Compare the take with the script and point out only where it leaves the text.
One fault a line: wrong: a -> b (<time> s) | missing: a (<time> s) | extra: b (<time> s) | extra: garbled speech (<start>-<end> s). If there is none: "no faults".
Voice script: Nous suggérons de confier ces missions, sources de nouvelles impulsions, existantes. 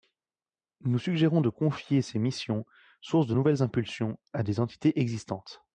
extra: à des entités (4.3 s)